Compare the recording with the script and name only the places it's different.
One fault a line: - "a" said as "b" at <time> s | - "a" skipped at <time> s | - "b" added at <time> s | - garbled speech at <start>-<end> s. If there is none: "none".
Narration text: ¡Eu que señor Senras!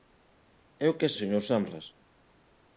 none